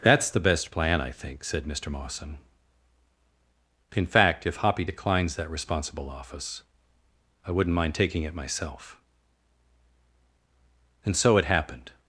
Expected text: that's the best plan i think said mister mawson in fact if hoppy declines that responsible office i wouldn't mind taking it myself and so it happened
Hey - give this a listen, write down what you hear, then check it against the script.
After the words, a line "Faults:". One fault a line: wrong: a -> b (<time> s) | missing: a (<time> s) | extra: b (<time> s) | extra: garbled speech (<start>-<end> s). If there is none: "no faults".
that's the best plan i think said mister mawson in fact if hoppy declines that responsible office i wouldn't mind taking it myself and so it happened
Faults:
no faults